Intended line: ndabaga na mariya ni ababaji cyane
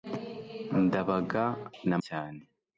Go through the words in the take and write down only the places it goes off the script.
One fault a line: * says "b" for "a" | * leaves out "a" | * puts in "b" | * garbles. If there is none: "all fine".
* leaves out "mariya ni ababaji"